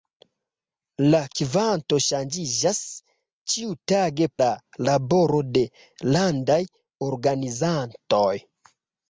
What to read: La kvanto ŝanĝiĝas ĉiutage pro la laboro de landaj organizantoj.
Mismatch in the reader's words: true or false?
true